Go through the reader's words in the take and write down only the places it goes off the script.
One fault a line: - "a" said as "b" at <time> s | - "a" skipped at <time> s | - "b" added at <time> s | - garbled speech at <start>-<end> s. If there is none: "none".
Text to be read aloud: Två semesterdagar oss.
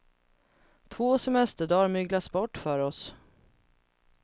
- "myglas bort för" added at 1.9 s